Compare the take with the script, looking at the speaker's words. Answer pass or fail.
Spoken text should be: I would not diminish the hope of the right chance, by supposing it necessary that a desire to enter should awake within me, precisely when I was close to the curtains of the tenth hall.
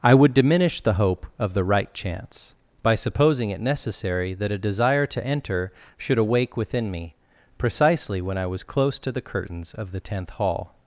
fail